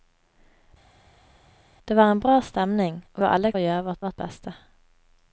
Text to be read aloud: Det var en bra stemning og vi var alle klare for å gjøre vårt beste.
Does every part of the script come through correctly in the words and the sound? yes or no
no